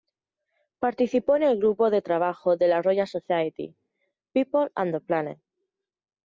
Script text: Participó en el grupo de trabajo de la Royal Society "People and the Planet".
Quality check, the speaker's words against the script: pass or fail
pass